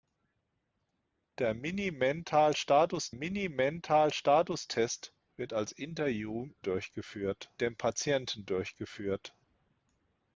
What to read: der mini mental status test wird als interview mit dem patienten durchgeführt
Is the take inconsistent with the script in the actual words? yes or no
yes